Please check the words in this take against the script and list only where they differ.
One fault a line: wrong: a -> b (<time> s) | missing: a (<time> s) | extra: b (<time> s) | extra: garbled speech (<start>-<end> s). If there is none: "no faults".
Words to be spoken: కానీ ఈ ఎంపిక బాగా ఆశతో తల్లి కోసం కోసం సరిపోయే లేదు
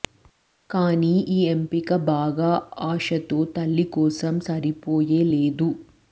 missing: కోసం (4.3 s)